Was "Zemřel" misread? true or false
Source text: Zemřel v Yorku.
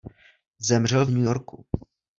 false